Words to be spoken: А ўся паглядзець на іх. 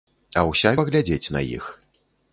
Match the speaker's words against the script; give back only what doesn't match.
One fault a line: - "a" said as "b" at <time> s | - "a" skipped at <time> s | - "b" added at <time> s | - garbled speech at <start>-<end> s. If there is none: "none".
none